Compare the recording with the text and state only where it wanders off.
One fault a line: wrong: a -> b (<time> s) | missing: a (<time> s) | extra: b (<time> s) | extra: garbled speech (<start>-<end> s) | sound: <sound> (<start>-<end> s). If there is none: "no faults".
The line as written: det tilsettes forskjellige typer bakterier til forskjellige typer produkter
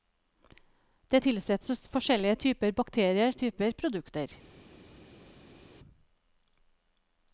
missing: til forskjellige (3.3 s)